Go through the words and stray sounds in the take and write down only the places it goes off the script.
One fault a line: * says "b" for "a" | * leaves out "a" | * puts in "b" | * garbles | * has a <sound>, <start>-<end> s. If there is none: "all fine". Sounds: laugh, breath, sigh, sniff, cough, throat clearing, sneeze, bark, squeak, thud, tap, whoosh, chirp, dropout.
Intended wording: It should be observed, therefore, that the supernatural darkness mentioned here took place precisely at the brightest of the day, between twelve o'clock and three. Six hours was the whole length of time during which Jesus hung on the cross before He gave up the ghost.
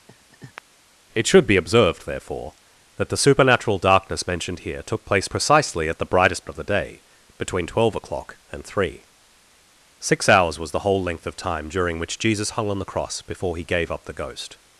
* has a laugh, 0.1-0.6 s